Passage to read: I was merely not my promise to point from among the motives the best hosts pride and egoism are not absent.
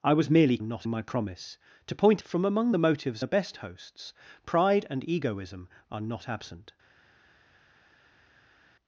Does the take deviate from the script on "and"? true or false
false